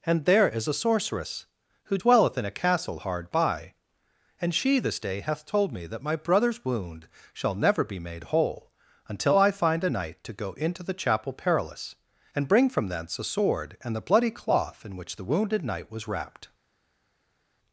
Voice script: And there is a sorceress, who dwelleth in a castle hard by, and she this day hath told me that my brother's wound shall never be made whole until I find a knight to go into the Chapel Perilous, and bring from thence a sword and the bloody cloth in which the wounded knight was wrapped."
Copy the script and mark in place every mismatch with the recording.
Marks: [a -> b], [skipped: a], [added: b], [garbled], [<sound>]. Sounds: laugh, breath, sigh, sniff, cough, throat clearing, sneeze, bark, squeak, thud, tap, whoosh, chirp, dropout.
And there is a sorceress, who dwelleth in a castle hard by, and she this day hath told me that my brother's wound shall never be made whole until I find a knight to go into the Chapel Perilous, and bring from thence a sword and the bloody cloth in which the wounded knight was wrapped."